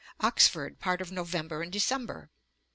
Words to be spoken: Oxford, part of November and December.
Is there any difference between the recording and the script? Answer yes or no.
no